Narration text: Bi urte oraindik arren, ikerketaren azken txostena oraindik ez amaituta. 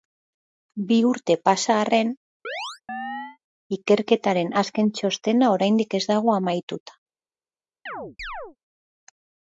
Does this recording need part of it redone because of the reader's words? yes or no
yes